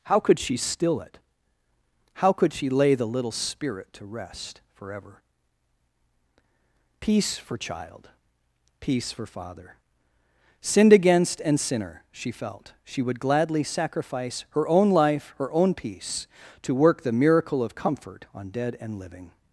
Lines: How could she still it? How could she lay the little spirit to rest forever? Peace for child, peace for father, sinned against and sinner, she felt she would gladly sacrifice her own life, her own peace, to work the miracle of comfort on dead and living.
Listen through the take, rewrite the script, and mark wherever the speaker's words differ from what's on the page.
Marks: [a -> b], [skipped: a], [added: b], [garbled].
How could she still it? How could she lay the little spirit to rest forever? Peace for child, peace for father, sinned against and sinner, she felt she would gladly sacrifice her own life, her own peace, to work the miracle of comfort on dead and living.